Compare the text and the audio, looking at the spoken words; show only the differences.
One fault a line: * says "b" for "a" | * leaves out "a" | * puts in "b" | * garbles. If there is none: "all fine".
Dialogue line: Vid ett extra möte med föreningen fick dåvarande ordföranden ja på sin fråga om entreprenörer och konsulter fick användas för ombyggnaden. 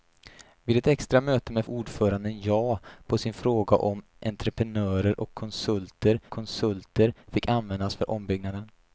* leaves out "föreningen fick dåvarande"
* puts in "konsulter"